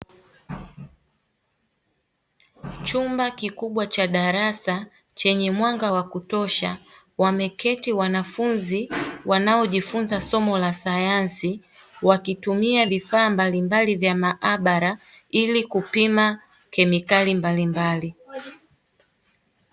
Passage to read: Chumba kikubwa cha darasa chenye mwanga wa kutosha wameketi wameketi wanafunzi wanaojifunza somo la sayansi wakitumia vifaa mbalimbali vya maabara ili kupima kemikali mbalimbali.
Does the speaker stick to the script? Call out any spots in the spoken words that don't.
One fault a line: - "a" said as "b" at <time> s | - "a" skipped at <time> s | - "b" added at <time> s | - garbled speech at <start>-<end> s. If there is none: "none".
- "wameketi" skipped at 7.9 s